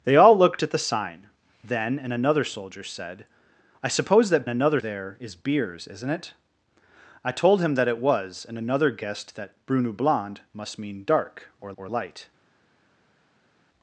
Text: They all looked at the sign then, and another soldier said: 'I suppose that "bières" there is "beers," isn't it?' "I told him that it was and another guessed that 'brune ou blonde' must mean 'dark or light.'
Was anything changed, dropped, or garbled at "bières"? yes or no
yes